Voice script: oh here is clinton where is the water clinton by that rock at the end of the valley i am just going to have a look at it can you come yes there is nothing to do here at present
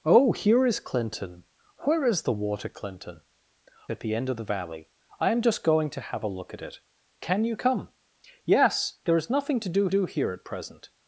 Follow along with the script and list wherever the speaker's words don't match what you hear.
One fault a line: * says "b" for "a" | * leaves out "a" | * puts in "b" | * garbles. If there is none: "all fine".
* leaves out "by that rock"
* puts in "do"